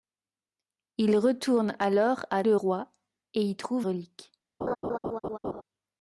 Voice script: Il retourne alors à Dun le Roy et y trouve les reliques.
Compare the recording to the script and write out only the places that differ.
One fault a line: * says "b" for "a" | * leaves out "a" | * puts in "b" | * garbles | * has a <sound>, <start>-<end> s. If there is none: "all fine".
* leaves out "Dun"
* leaves out "les"
* has a laugh, 4.6-5.6 s